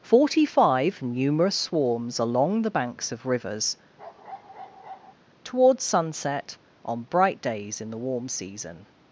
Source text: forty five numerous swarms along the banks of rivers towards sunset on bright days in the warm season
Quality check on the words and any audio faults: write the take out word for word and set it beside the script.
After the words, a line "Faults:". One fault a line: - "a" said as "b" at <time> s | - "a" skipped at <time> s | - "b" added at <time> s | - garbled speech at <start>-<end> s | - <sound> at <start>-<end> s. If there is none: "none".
forty five numerous swarms along the banks of rivers towards sunset on bright days in the warm season
Faults:
- bark at 4.0-5.1 s